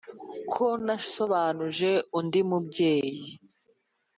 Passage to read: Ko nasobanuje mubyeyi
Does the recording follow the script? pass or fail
fail